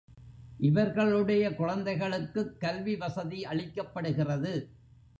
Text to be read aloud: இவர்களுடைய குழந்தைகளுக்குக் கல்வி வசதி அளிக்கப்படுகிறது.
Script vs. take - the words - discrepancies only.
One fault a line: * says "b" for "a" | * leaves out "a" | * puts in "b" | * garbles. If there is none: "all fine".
all fine